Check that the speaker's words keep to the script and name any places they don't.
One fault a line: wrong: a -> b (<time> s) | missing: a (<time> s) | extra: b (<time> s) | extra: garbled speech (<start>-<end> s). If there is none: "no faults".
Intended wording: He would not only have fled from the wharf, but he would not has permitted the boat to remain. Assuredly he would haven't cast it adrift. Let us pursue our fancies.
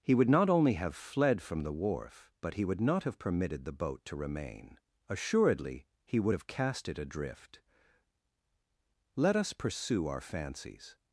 wrong: has -> have (3.0 s)
wrong: haven't -> have (6.3 s)